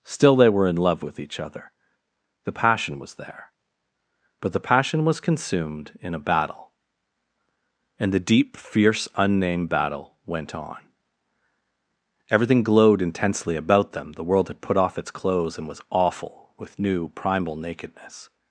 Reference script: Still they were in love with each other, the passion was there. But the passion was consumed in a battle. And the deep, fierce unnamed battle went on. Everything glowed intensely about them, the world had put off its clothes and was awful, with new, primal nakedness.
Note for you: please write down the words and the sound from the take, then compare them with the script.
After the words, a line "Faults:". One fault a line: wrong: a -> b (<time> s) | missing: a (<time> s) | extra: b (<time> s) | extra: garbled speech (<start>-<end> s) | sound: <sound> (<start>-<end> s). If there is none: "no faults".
Still they were in love with each other, the passion was there. But the passion was consumed in a battle. And the deep, fierce unnamed battle went on. Everything glowed intensely about them, the world had put off its clothes and was awful, with new, primal nakedness.
Faults:
no faults